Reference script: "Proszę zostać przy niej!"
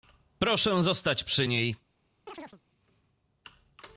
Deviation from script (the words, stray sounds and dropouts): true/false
true